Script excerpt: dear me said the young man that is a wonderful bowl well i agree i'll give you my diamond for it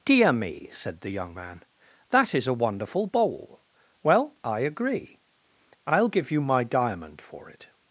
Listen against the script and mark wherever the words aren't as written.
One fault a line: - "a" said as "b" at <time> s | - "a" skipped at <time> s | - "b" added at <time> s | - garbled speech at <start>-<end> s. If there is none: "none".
none